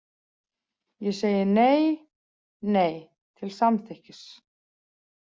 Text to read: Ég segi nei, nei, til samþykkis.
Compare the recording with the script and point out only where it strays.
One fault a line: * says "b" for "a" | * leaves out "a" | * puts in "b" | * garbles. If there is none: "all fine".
all fine